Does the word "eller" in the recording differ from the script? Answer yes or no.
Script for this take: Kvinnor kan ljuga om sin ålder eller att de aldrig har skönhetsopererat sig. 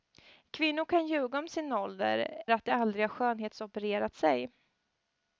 yes